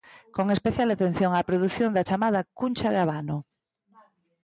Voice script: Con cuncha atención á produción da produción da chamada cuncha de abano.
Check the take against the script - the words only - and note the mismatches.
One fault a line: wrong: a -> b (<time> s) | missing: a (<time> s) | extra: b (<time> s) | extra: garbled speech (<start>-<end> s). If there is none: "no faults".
wrong: cuncha -> especial (0.6 s)
missing: produción da (2.1 s)